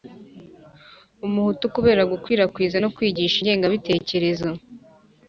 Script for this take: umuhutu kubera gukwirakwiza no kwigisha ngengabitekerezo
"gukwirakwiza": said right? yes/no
yes